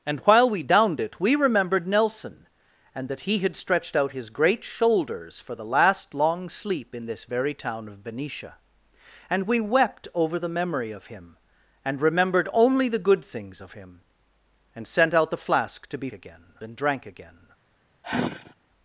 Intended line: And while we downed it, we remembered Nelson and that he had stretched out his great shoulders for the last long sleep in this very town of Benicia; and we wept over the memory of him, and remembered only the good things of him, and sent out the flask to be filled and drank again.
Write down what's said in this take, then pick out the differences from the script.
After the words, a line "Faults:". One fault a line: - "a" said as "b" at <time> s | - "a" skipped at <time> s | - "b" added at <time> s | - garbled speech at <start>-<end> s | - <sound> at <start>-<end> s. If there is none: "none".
And while we downed it, we remembered Nelson and that he had stretched out his great shoulders for the last long sleep in this very town of Benicia; and we wept over the memory of him, and remembered only the good things of him, and sent out the flask to be again and drank again.
Faults:
- "filled" said as "again" at 16.1 s
- sigh at 18.0-18.5 s